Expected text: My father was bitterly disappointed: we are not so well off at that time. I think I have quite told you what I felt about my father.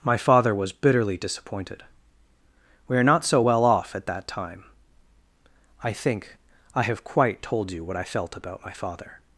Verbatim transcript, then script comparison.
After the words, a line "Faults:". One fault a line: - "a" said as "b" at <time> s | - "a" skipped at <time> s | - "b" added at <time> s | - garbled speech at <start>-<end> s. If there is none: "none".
My father was bitterly disappointed: we are not so well off at that time. I think I have quite told you what I felt about my father.
Faults:
none